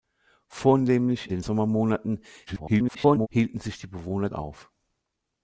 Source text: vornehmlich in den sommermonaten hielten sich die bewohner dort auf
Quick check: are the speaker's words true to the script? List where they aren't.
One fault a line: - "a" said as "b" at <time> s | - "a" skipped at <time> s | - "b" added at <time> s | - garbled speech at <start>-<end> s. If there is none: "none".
- "in" skipped at 1.3 s
- garbled speech at 2.5-3.3 s
- "dort" skipped at 4.3 s